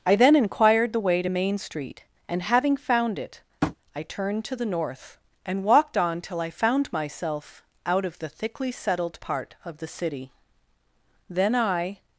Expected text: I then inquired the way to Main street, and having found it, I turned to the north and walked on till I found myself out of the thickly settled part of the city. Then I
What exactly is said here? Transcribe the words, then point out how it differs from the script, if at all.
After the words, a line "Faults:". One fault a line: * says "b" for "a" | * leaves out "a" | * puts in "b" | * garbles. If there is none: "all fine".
I then inquired the way to Main street, and having found it, I turned to the north and walked on till I found myself out of the thickly settled part of the city. Then I
Faults:
all fine